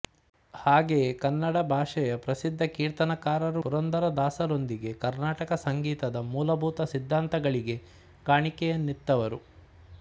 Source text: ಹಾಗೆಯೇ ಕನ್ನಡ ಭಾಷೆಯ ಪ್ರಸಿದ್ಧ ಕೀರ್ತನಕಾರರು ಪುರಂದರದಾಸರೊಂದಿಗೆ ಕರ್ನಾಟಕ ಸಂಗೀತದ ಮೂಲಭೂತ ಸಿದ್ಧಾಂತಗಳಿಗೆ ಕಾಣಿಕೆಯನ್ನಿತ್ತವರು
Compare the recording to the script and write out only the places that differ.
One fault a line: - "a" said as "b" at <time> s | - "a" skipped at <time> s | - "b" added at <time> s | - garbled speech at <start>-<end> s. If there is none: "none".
none